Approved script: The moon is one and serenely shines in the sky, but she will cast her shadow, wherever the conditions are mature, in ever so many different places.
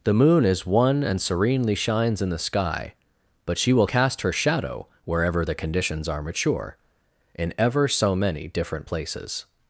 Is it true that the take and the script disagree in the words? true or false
false